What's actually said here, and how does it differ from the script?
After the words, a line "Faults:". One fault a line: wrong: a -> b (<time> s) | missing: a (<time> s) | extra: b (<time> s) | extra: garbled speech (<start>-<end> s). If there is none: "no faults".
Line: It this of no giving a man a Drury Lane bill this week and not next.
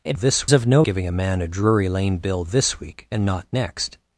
It this of no giving a man a Drury Lane bill this week and not next.
Faults:
no faults